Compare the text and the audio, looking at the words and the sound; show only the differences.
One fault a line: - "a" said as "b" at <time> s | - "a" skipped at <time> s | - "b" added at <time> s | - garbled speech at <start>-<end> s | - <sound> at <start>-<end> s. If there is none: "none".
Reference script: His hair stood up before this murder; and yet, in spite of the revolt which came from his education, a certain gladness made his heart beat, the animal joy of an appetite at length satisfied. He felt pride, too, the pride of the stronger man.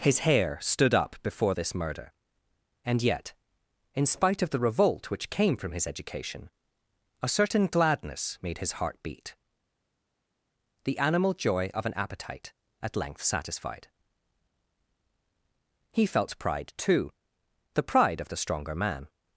none